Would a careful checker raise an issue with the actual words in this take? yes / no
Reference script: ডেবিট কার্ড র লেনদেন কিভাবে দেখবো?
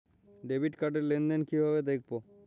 no